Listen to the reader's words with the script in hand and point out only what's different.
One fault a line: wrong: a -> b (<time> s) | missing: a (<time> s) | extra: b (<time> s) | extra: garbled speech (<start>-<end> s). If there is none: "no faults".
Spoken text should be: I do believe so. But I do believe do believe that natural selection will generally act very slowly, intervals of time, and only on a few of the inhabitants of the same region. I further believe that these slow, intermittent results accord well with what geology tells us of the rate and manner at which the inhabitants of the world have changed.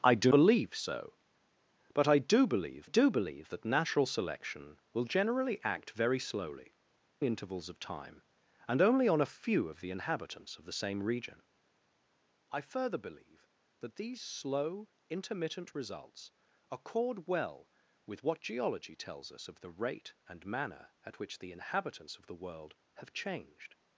no faults